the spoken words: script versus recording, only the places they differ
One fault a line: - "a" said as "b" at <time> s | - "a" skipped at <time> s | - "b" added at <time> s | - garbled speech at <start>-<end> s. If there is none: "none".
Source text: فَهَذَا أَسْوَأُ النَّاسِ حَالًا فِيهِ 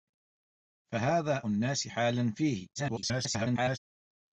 - "أَسْوَأُ" skipped at 1.5 s
- garbled speech at 2.8-3.8 s